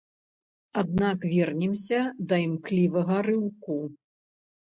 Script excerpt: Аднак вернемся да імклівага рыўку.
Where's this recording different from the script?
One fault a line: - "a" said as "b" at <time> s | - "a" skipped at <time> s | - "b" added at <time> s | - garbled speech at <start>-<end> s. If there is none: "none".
none